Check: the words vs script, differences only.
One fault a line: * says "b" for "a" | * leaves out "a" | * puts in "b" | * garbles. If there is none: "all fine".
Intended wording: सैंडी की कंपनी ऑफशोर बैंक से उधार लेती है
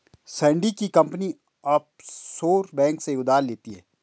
all fine